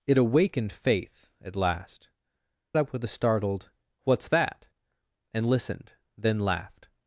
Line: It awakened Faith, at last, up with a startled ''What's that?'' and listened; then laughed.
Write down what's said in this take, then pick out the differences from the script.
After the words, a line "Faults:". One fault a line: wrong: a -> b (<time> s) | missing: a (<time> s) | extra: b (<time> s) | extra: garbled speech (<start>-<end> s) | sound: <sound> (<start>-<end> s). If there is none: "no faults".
It awakened Faith, at last, up with a startled ''What's that?'' and listened; then laughed.
Faults:
no faults